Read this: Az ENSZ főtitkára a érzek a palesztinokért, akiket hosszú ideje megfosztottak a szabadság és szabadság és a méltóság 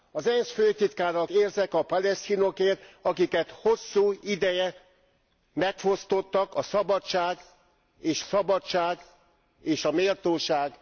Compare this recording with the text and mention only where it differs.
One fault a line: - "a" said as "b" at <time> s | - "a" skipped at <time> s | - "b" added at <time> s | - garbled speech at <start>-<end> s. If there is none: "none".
none